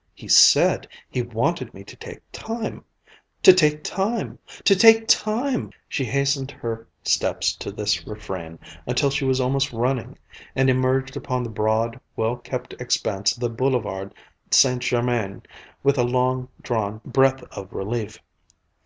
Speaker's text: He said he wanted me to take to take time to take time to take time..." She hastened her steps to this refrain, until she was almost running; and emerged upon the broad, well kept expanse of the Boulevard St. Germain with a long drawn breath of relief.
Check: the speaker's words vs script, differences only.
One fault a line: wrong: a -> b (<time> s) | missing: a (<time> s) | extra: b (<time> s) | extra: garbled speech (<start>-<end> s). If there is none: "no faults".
missing: to take (2.2 s)